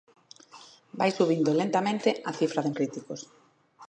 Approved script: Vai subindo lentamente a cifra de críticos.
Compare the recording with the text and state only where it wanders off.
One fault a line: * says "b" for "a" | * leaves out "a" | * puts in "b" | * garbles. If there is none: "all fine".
all fine